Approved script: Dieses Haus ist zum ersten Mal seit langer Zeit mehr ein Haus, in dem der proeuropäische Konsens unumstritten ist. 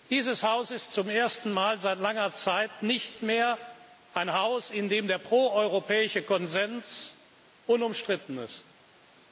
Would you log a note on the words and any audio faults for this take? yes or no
yes